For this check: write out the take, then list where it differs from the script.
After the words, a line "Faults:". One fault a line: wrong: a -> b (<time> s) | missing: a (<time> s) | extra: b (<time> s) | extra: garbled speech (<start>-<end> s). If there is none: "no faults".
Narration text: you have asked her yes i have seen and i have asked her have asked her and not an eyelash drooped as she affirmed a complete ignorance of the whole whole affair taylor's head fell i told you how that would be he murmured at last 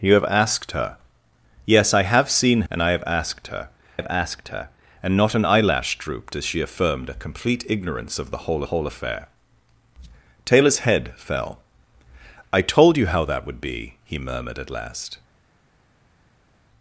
you have asked her yes i have seen and i have asked her have asked her and not an eyelash drooped as she affirmed a complete ignorance of the whole whole affair taylor's head fell i told you how that would be he murmured at last
Faults:
no faults